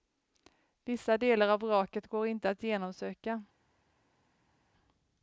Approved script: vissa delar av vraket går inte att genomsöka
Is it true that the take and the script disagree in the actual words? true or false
false